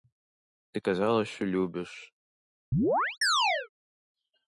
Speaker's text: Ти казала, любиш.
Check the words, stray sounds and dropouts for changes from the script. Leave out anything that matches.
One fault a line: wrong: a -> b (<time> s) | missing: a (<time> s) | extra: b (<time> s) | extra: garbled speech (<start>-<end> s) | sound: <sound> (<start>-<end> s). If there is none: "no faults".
extra: що (1.3 s)
sound: chirp (2.7-3.7 s)